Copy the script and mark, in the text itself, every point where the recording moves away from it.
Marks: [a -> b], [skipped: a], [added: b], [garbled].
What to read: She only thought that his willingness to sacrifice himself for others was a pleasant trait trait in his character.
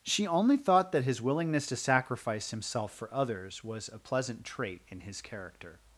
She only thought that his willingness to sacrifice himself for others was a pleasant trait [skipped: trait] in his character.